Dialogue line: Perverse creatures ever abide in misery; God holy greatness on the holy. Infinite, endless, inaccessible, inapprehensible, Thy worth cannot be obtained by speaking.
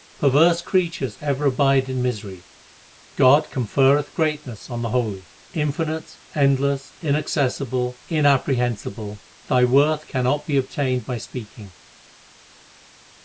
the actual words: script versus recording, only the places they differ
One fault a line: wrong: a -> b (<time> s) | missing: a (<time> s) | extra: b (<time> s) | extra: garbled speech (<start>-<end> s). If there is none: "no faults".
wrong: holy -> conferreth (3.5 s)